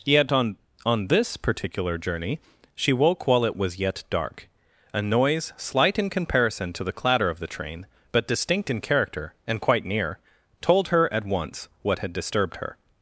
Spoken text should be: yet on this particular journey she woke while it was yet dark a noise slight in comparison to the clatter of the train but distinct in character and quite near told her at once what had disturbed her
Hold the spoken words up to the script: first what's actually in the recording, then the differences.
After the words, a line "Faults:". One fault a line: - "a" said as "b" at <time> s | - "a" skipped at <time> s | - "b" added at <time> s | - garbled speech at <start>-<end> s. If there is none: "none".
yet on on this particular journey she woke while it was yet dark a noise slight in comparison to the clatter of the train but distinct in character and quite near told her at once what had disturbed her
Faults:
- "on" added at 0.8 s